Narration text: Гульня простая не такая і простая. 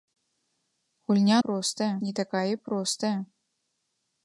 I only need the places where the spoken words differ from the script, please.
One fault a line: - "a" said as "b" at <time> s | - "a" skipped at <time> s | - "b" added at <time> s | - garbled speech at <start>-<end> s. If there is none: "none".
none